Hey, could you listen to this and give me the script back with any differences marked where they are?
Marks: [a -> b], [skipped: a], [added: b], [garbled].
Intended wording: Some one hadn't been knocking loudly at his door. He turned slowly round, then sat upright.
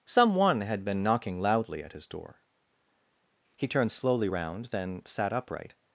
Some one [hadn't -> had] been knocking loudly at his door. He turned slowly round, then sat upright.